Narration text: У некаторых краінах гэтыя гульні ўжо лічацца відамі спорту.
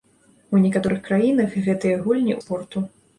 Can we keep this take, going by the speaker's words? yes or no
no